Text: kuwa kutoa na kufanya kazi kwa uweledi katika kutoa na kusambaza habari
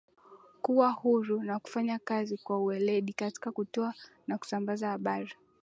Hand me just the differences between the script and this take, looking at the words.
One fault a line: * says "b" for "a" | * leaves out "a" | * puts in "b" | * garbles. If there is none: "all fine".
* says "huru" for "kutoa"